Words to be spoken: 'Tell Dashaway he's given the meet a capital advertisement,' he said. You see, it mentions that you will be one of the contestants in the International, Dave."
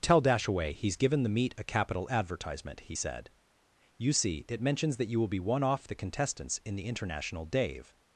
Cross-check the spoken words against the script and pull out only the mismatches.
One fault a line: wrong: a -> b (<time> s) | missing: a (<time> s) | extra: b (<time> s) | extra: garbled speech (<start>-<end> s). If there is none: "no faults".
wrong: of -> off (5.6 s)